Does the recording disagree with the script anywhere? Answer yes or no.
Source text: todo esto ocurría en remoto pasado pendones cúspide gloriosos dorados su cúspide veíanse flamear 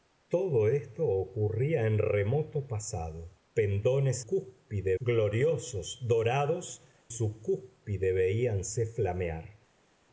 no